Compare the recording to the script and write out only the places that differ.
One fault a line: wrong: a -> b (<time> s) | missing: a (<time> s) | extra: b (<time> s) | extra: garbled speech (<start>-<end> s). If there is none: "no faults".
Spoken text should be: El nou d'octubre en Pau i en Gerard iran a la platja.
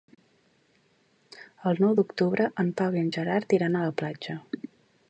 no faults